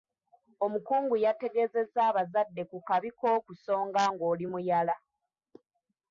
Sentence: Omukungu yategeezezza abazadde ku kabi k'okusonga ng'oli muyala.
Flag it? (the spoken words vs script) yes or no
no